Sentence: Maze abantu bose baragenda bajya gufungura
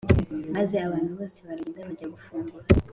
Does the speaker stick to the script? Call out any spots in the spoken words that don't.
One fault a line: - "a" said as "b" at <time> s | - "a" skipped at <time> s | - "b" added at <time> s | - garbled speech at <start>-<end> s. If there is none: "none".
none